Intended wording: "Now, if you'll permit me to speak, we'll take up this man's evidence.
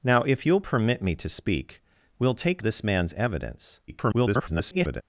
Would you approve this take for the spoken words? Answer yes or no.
no